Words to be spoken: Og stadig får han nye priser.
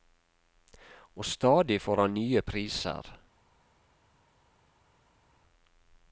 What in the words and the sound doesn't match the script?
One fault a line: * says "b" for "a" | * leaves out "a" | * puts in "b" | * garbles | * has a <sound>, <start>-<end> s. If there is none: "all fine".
all fine